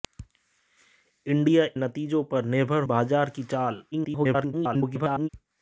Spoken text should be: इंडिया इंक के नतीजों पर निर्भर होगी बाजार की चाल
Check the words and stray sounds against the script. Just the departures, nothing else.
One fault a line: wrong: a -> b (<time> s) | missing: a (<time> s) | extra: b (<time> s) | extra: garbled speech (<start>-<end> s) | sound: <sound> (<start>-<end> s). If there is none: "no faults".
missing: इंक के (1.6 s)
missing: होगी (2.8 s)
extra: garbled speech (3.9-5.3 s)